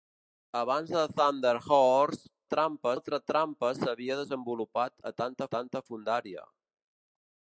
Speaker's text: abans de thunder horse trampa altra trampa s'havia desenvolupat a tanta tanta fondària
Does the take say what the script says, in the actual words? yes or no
yes